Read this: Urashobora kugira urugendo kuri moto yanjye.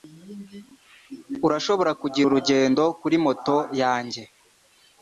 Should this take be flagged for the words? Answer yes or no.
no